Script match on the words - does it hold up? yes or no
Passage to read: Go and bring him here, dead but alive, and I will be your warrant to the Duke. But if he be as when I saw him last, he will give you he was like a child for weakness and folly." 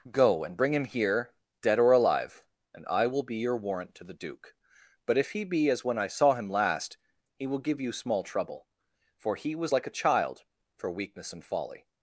no